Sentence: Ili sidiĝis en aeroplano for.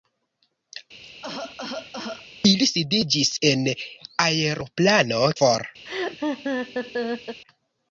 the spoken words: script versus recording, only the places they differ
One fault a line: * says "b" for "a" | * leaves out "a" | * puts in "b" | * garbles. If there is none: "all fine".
all fine